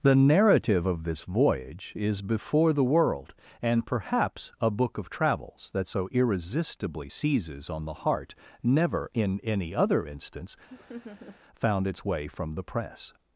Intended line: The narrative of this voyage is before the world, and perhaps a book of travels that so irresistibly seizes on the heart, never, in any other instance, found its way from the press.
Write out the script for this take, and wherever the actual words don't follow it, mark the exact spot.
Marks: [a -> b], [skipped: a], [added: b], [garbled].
The narrative of this voyage is before the world, and perhaps a book of travels that so irresistibly seizes on the heart, never, in any other instance, found its way from the press.